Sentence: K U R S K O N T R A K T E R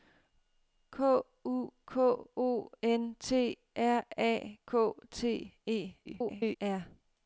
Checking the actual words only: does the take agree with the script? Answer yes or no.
no